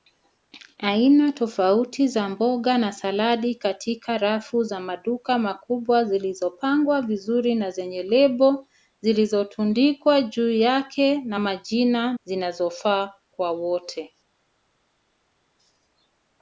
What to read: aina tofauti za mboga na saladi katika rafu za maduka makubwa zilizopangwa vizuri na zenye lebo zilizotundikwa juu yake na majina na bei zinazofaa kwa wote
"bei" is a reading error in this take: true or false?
true